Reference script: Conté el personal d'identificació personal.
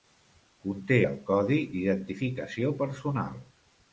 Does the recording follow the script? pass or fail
fail